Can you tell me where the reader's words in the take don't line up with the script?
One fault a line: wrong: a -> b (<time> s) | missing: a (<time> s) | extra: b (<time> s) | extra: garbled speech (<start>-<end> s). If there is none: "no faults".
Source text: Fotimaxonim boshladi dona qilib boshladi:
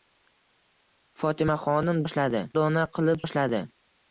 no faults